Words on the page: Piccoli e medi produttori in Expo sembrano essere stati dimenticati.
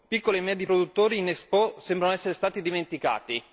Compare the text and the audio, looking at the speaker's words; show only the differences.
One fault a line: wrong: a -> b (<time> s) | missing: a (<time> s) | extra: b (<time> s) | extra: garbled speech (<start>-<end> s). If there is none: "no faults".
no faults